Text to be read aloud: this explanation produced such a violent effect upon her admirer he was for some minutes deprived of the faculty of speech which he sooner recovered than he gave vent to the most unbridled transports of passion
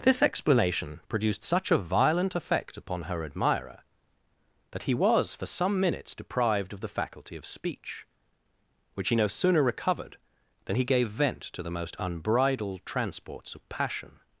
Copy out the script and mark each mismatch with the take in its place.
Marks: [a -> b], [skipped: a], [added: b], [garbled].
this explanation produced such a violent effect upon her admirer [added: that] he was for some minutes deprived of the faculty of speech which he [added: no] sooner recovered than he gave vent to the most unbridled transports of passion